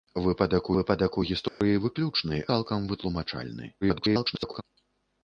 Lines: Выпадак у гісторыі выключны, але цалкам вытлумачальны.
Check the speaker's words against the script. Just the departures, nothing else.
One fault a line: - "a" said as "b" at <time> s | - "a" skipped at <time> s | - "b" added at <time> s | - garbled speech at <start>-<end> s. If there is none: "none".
- "выпадак" added at 0.8 s
- "але" skipped at 2.4 s
- garbled speech at 3.8-4.6 s